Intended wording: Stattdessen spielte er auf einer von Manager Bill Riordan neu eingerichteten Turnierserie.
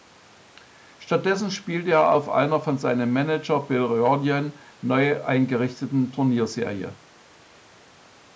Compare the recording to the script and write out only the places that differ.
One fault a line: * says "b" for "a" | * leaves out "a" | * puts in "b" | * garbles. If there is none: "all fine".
* puts in "seinem"